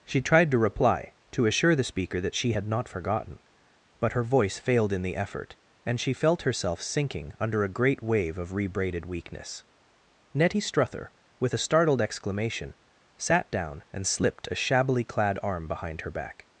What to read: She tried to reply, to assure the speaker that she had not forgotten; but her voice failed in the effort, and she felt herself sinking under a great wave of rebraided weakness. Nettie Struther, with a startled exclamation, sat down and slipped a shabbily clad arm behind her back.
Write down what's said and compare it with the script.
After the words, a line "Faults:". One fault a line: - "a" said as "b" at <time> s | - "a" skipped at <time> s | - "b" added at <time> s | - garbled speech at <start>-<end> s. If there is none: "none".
She tried to reply, to assure the speaker that she had not forgotten; but her voice failed in the effort, and she felt herself sinking under a great wave of rebraided weakness. Nettie Struther, with a startled exclamation, sat down and slipped a shabbily clad arm behind her back.
Faults:
none